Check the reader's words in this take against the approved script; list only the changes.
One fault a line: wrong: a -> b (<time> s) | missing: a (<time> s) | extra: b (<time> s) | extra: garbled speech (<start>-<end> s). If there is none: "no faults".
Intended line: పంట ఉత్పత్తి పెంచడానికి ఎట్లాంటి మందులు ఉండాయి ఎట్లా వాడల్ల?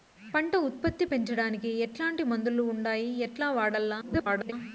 extra: garbled speech (4.0-4.5 s)